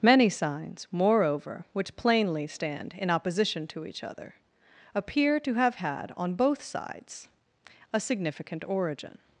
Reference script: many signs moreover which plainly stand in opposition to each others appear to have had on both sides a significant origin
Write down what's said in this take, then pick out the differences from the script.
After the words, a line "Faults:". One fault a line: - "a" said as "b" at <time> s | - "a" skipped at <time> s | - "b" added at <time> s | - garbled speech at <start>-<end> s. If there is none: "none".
many signs moreover which plainly stand in opposition to each other appear to have had on both sides a significant origin
Faults:
- "others" said as "other" at 4.0 s